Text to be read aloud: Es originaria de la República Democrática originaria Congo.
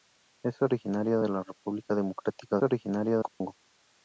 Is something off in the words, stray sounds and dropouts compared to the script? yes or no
yes